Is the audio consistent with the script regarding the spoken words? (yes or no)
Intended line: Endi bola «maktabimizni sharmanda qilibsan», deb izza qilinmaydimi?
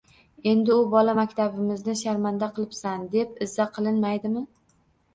no